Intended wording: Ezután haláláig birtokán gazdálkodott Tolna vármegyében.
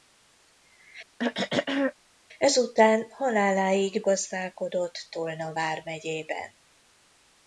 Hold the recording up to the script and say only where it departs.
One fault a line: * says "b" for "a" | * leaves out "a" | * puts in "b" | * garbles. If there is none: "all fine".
* leaves out "birtokán"